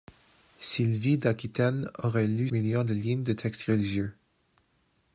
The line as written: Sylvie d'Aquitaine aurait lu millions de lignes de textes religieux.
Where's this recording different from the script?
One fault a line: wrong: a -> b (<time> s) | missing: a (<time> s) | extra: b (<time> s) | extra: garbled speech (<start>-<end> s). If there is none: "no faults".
no faults